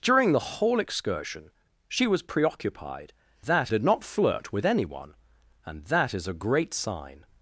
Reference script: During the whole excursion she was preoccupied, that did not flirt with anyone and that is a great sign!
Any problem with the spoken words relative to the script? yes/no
no